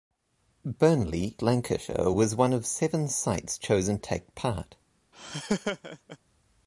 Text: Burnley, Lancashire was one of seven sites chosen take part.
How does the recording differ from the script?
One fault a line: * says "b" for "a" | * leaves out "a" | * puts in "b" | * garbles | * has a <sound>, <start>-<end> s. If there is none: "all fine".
* has a laugh, 5.1-6.2 s